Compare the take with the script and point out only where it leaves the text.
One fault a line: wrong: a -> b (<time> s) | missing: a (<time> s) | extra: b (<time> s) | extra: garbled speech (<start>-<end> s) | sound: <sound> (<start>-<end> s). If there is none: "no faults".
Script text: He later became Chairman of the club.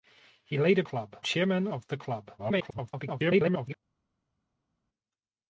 wrong: became -> club (0.8 s)
extra: garbled speech (2.4-3.8 s)